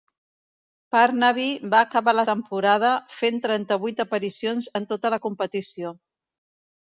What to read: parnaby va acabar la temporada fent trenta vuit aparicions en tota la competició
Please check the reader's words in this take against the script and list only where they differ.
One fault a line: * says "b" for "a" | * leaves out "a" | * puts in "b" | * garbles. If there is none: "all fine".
all fine